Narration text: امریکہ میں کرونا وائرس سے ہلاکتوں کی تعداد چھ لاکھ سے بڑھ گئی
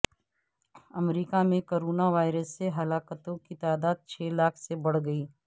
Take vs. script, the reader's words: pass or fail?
pass